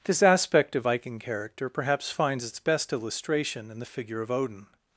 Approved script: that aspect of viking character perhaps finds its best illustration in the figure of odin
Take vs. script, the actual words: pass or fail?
fail